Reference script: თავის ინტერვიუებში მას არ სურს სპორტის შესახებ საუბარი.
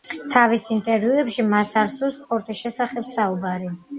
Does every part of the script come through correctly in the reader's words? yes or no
yes